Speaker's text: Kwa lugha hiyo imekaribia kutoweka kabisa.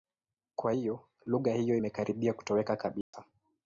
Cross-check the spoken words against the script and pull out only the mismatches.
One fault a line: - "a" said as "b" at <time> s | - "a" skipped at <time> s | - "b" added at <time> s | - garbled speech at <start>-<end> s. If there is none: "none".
- "hiyo" added at 0.7 s